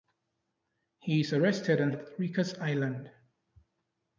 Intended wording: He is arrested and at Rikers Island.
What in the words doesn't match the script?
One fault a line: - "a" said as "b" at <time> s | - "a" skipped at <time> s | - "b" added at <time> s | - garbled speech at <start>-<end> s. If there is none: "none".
none